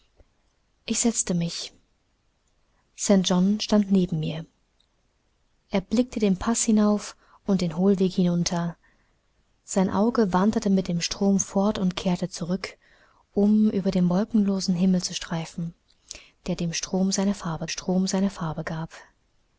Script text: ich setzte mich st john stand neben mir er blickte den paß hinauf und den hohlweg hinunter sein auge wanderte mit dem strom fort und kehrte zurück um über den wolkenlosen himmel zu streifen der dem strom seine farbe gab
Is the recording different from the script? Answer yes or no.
yes